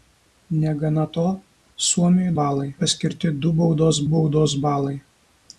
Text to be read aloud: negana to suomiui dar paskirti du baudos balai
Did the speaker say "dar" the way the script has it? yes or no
no